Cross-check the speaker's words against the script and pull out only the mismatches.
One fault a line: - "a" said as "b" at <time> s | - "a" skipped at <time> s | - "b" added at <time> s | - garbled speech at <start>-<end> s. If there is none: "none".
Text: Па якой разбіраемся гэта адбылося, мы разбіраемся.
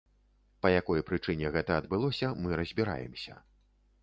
- "разбіраемся" said as "прычыне" at 1.1 s